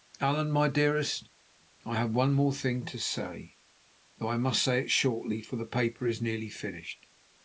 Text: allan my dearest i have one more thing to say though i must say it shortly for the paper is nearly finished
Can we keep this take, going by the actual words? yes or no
yes